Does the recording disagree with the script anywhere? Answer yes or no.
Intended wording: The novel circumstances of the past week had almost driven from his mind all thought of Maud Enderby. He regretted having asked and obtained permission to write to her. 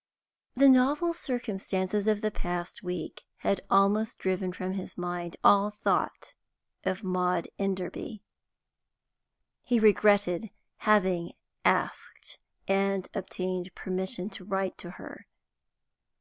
no